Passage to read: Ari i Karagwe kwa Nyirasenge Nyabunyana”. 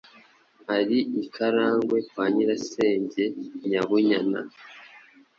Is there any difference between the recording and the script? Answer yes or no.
no